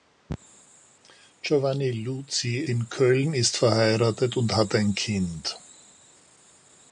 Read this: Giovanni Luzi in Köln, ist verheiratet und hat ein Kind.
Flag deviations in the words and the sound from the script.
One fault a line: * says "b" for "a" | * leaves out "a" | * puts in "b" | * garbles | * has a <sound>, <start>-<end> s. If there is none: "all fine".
all fine